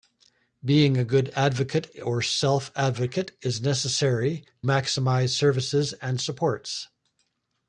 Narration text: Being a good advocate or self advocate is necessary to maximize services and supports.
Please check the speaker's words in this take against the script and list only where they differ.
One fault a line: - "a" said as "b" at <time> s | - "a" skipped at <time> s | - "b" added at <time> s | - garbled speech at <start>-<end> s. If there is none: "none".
- "to" skipped at 4.4 s